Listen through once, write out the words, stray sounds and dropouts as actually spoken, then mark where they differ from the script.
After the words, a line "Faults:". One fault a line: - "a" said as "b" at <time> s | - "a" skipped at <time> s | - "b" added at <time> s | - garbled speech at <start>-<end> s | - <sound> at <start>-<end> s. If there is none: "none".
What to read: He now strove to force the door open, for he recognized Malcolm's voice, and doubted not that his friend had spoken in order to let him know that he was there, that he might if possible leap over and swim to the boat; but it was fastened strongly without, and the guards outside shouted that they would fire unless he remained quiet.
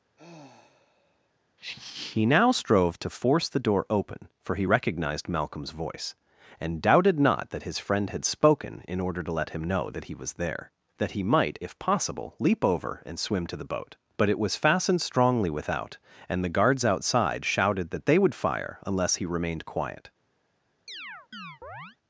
He now strove to force the door open, for he recognized Malcolm's voice, and doubted not that his friend had spoken in order to let him know that he was there, that he might if possible leap over and swim to the boat; but it was fastened strongly without, and the guards outside shouted that they would fire unless he remained quiet.
Faults:
- sigh at 0.2-1.3 s
- chirp at 20.9-22.0 s